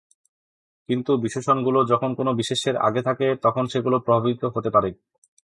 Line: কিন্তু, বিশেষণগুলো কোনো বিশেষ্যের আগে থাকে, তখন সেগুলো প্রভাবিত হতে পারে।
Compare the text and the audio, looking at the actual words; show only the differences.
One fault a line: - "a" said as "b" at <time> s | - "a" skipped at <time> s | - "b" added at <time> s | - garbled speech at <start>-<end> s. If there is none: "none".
- "যখন" added at 1.9 s